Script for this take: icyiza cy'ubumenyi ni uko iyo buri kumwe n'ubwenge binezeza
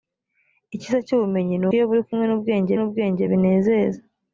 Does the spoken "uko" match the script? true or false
false